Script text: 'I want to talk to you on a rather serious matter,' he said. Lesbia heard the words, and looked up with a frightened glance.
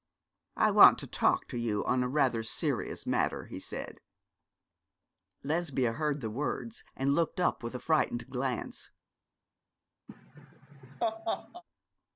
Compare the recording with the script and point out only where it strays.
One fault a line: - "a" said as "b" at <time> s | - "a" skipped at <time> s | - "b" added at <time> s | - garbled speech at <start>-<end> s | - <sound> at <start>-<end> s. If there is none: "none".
- laugh at 10.1-11.6 s